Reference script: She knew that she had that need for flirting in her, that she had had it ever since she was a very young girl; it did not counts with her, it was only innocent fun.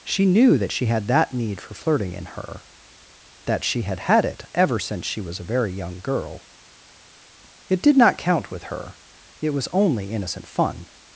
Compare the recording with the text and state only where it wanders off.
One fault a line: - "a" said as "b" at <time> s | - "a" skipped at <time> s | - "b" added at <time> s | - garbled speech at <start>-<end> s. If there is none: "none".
- "counts" said as "count" at 8.2 s